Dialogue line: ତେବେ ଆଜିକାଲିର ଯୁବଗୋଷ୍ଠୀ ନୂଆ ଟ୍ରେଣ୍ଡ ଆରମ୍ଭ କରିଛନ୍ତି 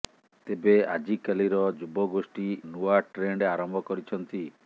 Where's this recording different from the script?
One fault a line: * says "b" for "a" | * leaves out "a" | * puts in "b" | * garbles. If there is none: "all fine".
all fine